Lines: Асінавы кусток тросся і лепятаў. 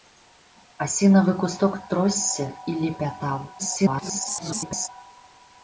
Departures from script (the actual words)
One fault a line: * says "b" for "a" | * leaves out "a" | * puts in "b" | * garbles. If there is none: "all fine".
* garbles